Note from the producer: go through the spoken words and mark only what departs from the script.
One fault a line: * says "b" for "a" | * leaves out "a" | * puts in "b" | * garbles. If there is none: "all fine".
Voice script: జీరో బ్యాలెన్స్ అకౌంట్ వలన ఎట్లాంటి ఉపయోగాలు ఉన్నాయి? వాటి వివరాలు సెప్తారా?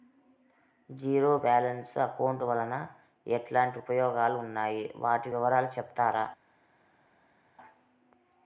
all fine